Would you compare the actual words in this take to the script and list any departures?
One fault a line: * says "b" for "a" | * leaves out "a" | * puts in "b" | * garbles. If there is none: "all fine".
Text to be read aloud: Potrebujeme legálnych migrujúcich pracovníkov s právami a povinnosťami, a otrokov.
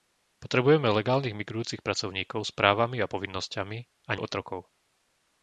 all fine